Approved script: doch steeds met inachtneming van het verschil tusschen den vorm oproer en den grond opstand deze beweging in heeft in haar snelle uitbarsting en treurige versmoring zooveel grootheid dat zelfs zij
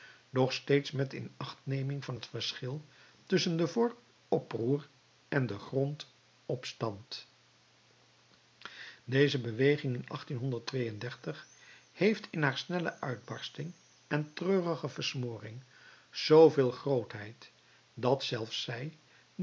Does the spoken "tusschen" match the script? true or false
true